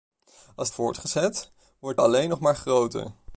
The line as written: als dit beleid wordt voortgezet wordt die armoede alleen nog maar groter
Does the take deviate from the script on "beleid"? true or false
true